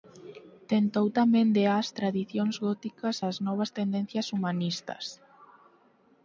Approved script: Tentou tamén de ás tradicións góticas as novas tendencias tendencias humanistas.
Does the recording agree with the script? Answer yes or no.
no